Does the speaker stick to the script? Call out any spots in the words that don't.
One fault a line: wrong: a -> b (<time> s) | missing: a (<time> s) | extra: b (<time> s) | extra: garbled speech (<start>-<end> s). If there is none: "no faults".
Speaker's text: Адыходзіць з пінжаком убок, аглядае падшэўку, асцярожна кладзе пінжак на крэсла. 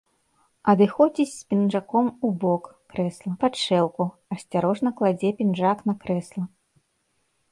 wrong: аглядае -> крэсла (2.9 s)